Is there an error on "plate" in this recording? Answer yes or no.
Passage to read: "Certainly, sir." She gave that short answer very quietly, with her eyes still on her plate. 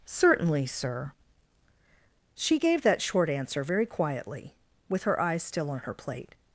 no